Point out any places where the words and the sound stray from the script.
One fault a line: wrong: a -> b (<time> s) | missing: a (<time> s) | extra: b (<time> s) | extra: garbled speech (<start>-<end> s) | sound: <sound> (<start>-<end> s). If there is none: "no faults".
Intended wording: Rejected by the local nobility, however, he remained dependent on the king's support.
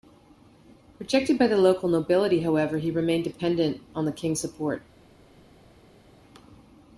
no faults